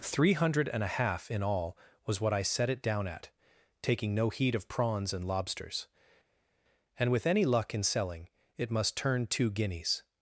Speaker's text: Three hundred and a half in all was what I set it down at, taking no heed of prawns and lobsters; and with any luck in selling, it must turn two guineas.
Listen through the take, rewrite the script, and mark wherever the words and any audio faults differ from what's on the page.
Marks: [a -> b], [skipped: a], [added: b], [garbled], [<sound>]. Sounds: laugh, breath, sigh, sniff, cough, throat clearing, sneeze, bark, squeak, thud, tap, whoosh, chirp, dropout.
Three hundred and a half in all was what I set it down at, taking no heed of prawns and lobsters; and with any luck in selling, it must turn two guineas.